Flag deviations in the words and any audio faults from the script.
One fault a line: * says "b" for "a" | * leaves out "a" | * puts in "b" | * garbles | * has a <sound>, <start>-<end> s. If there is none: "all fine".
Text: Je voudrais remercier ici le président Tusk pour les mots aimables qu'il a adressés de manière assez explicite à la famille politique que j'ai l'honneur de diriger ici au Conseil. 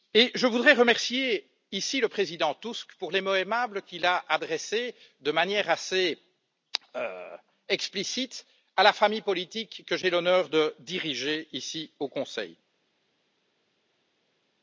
all fine